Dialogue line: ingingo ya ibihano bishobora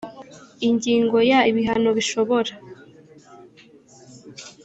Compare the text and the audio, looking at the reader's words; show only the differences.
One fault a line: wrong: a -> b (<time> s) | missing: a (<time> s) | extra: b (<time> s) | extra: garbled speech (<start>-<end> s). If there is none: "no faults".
no faults